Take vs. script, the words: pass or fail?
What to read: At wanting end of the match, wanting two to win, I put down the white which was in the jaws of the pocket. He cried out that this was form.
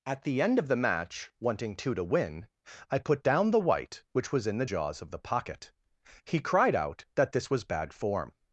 fail